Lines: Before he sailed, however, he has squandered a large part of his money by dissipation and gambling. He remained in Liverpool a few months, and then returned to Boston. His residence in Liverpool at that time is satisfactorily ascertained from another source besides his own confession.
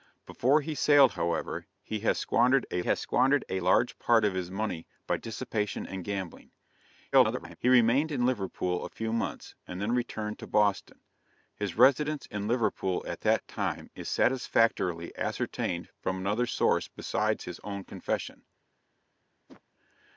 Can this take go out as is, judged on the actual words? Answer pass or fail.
fail